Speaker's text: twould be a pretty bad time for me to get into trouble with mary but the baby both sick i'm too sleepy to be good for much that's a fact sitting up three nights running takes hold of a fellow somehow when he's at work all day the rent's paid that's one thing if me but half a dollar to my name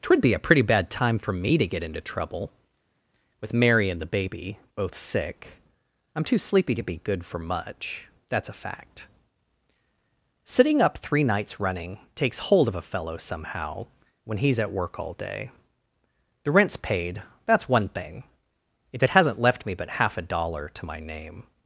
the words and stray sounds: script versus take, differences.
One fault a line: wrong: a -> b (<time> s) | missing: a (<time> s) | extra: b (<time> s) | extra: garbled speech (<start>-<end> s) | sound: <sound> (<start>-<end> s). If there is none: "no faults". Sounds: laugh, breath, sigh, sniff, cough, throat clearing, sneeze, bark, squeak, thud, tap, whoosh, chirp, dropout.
wrong: but -> and (3.9 s)
extra: it hasn't left (19.0 s)